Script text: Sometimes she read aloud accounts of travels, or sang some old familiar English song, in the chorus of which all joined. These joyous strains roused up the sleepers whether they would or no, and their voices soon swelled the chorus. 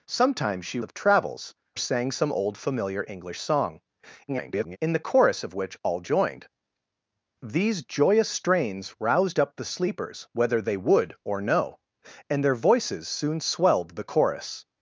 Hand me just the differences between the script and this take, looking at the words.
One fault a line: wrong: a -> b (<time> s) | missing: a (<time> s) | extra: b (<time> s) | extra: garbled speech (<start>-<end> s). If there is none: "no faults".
missing: read aloud accounts (0.8 s)
missing: or (1.5 s)
extra: garbled speech (4.3-4.8 s)